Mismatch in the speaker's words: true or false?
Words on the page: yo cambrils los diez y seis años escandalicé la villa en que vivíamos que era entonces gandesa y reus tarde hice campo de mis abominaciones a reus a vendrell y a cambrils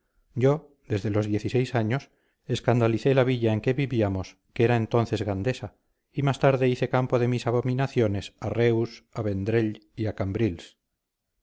true